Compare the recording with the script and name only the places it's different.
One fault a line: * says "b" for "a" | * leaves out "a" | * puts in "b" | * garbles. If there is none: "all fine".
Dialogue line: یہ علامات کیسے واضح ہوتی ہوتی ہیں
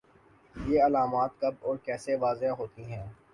* puts in "کب اور"
* leaves out "ہوتی"